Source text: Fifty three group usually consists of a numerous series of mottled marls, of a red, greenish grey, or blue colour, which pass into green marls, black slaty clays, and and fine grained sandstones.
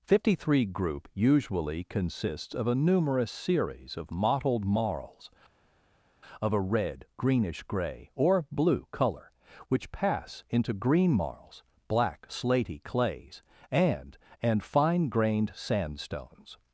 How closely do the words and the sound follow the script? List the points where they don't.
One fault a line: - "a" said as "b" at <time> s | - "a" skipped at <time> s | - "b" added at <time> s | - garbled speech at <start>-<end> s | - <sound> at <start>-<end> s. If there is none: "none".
none